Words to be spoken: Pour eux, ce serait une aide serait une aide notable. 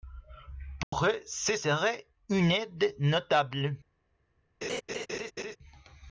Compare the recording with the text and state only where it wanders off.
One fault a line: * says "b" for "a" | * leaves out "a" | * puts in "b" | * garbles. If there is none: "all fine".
* leaves out "serait une aide"